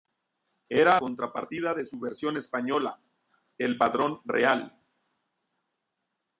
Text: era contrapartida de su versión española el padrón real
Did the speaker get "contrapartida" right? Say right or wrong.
right